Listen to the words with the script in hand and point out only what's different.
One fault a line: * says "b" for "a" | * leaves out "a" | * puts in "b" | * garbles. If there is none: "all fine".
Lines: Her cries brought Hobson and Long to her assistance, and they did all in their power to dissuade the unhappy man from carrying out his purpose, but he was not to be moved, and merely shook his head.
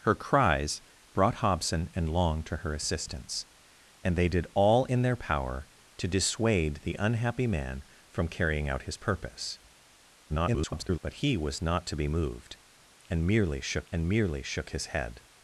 * garbles
* puts in "and merely shook"